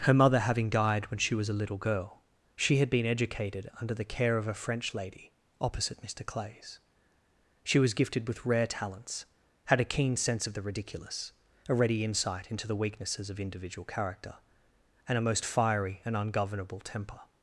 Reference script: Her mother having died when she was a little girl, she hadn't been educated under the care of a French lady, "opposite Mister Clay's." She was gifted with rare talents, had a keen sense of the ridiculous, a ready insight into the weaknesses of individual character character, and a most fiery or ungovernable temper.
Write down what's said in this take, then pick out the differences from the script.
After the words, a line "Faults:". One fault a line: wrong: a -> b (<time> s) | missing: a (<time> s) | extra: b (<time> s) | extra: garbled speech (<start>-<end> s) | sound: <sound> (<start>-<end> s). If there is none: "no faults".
Her mother having died when she was a little girl, she had been educated under the care of a French lady, "opposite Mister Clay's." She was gifted with rare talents, had a keen sense of the ridiculous, a ready insight into the weaknesses of individual character, and a most fiery and ungovernable temper.
Faults:
wrong: hadn't -> had (2.8 s)
missing: character (14.4 s)
wrong: or -> and (16.0 s)